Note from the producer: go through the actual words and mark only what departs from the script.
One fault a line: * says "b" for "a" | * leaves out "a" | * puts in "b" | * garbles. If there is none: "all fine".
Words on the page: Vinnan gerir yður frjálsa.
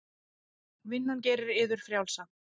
all fine